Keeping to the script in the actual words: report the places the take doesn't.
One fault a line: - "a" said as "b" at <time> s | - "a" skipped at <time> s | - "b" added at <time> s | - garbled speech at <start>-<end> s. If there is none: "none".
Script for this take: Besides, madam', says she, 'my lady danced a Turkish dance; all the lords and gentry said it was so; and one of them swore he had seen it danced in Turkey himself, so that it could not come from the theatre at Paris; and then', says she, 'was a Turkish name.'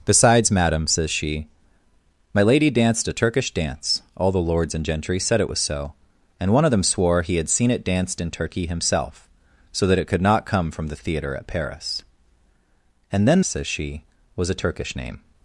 none